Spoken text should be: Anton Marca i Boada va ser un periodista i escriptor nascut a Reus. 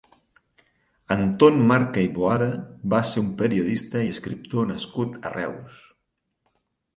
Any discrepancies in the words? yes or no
no